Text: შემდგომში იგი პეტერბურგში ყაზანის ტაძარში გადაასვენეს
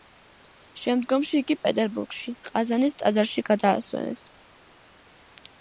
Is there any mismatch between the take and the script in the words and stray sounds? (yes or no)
no